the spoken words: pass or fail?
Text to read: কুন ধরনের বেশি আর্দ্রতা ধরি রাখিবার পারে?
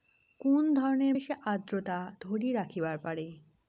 pass